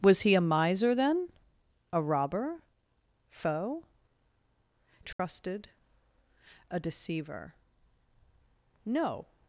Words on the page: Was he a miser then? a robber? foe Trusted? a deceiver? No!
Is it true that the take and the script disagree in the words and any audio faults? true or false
true